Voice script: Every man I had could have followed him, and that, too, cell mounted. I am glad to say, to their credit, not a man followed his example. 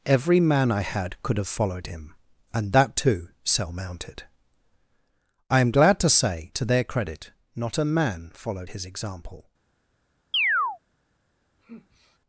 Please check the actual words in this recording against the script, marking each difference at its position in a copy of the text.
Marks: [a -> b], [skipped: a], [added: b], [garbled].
Every man I had could have followed him, and that, too, cell mounted. I am glad to say, to their credit, not a man followed his example.